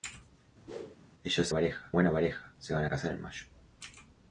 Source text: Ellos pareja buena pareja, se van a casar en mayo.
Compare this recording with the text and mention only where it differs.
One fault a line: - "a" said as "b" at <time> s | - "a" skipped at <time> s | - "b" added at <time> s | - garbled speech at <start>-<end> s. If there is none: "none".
none